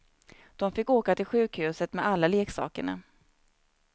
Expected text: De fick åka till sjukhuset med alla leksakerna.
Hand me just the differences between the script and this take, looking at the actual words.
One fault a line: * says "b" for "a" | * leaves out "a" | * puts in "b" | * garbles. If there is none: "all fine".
all fine